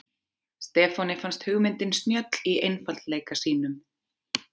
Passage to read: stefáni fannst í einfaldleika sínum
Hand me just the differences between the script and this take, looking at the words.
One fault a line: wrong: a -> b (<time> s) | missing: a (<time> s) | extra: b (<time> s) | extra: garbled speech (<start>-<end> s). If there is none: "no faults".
extra: hugmyndin snjöll (1.5 s)